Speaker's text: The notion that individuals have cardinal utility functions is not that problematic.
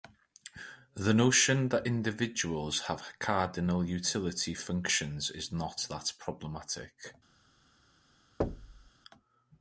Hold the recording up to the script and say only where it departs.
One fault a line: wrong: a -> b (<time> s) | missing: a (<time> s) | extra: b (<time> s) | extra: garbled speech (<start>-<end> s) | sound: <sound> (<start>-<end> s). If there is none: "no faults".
sound: thud (8.4-8.9 s)